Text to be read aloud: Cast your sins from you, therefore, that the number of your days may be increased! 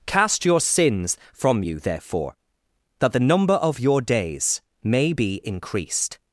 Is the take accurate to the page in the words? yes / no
yes